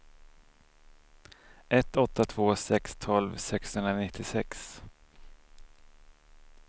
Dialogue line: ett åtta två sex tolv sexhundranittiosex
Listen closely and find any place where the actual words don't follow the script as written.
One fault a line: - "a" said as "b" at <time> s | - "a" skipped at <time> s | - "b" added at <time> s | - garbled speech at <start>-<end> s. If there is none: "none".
none